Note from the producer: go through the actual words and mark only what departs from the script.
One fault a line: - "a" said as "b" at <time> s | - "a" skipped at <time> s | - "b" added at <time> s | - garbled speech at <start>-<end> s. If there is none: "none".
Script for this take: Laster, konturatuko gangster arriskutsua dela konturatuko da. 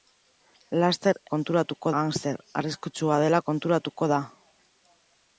none